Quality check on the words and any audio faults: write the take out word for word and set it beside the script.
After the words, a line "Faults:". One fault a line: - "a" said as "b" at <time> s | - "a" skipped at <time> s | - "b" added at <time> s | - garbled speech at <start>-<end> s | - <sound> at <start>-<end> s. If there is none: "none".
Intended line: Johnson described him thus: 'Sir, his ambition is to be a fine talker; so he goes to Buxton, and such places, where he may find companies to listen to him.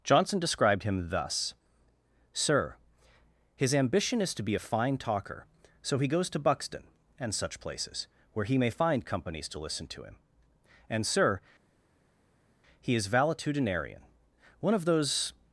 Johnson described him thus: 'Sir, his ambition is to be a fine talker; so he goes to Buxton, and such places, where he may find companies to listen to him. And, Sir, he is valetudinarian, one of those
Faults:
- "And Sir he is valetudinarian one of those" added at 10.9 s